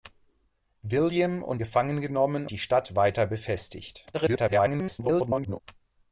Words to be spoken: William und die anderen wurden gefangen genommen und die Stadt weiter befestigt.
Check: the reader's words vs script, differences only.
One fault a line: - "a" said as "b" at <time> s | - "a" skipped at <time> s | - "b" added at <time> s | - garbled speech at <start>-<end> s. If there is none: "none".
- "die anderen wurden" skipped at 1.6 s
- "und" skipped at 2.5 s
- garbled speech at 4.1-5.6 s